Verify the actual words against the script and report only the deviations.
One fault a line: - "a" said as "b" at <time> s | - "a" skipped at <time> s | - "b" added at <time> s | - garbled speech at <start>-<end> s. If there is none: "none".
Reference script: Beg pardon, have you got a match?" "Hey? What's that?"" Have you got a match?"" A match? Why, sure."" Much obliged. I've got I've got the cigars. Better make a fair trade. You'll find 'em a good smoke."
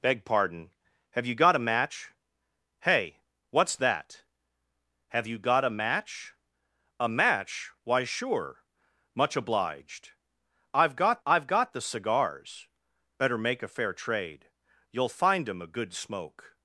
none